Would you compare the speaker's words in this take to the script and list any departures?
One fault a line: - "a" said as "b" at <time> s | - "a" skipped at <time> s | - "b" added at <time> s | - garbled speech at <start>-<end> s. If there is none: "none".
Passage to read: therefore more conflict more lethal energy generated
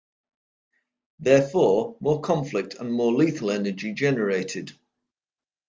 - "and" added at 2.8 s